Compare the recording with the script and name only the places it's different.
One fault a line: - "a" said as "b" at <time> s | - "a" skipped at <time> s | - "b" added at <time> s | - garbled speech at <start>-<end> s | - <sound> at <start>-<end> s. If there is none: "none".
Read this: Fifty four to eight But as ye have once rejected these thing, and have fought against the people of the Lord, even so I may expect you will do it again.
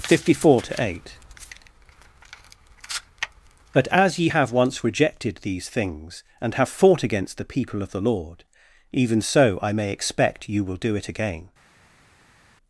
- "thing" said as "things" at 5.7 s